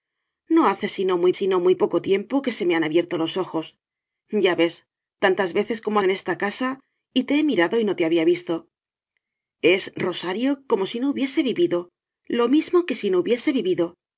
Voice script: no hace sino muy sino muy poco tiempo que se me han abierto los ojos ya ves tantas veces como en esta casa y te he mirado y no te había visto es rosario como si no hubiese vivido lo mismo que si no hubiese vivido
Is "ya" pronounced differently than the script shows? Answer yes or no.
no